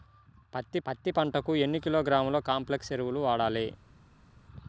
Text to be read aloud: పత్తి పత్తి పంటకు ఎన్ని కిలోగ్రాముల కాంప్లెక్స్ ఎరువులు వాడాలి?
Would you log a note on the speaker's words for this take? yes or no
no